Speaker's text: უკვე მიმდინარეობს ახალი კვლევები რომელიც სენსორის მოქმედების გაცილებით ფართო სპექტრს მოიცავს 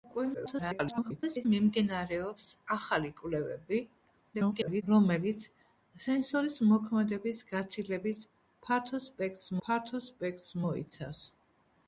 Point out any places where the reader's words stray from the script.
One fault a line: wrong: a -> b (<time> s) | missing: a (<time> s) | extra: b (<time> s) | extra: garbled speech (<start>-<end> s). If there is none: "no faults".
extra: garbled speech (0.3-1.5 s)
extra: garbled speech (4.3-4.8 s)
extra: ფართო სპექტრს (9.7 s)